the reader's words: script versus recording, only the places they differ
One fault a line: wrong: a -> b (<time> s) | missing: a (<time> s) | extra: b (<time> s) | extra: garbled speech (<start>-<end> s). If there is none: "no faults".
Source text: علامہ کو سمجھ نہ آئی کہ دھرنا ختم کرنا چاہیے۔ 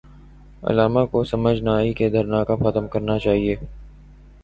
extra: کب (2.4 s)